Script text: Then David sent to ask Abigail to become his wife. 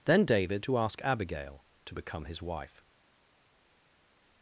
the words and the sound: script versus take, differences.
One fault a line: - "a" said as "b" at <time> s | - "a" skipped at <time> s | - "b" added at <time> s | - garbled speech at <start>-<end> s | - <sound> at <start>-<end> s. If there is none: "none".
- "sent" skipped at 0.7 s